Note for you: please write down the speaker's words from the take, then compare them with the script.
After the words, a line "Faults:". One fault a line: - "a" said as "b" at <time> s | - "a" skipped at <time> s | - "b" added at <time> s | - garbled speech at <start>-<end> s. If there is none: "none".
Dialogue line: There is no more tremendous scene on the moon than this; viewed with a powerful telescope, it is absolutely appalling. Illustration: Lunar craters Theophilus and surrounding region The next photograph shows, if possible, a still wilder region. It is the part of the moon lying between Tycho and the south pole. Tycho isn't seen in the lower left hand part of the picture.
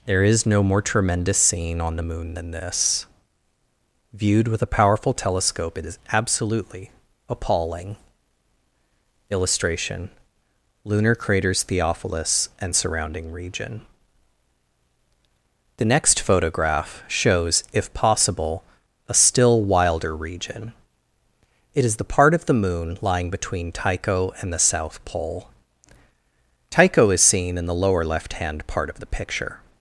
There is no more tremendous scene on the moon than this; viewed with a powerful telescope, it is absolutely appalling. Illustration: Lunar craters Theophilus and surrounding region The next photograph shows, if possible, a still wilder region. It is the part of the moon lying between Tycho and the south pole. Tycho is seen in the lower left hand part of the picture.
Faults:
- "isn't" said as "is" at 27.1 s